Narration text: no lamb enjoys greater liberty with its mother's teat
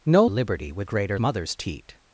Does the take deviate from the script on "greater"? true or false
true